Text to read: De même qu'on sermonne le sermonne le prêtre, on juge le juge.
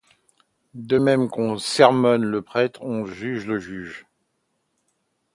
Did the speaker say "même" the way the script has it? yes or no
yes